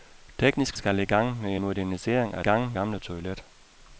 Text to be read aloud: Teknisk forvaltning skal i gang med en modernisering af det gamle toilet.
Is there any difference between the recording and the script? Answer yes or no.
yes